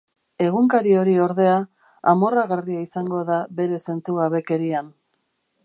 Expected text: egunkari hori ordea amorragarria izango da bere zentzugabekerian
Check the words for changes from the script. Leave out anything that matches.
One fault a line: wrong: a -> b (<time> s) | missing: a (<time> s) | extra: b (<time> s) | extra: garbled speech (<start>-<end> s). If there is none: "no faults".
no faults